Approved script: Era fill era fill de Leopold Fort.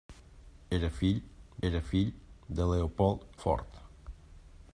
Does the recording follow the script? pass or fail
pass